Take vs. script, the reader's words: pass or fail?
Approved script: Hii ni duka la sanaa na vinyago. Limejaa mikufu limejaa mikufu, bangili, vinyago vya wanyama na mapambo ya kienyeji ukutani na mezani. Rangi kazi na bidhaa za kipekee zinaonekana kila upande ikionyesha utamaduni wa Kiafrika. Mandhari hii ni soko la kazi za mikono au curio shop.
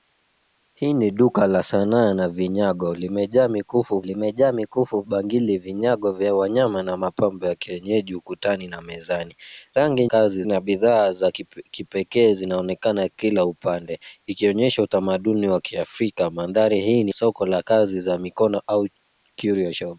pass